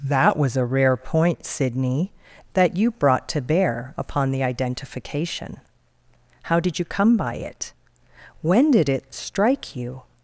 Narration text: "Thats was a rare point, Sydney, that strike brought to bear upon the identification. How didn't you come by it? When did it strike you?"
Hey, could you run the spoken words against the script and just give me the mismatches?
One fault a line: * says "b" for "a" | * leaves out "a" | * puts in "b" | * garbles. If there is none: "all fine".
* says "That" for "Thats"
* says "you" for "strike"
* says "did" for "didn't"